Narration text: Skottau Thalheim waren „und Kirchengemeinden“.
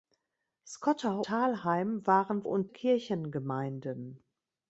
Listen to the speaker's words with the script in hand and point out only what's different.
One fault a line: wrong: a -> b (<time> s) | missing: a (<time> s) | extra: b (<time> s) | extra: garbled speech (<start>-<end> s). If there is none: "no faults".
no faults